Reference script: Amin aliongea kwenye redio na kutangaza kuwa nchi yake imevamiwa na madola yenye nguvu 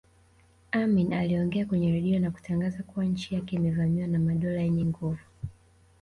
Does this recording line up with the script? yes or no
yes